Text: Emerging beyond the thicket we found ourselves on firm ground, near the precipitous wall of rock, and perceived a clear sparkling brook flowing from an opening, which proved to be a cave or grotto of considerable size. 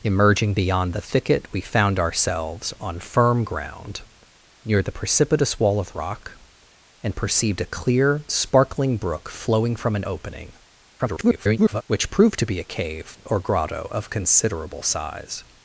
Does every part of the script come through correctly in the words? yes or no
no